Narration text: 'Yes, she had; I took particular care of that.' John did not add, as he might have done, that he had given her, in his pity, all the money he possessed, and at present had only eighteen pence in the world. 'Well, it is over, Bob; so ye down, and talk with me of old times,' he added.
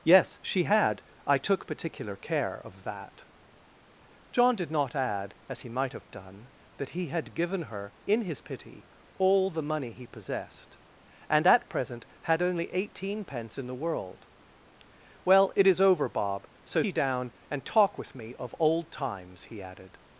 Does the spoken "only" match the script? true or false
true